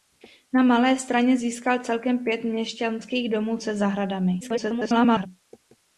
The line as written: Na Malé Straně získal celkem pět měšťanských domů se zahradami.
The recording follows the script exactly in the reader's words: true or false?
false